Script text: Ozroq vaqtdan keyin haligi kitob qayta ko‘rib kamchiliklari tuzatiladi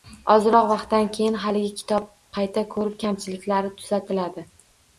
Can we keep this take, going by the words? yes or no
yes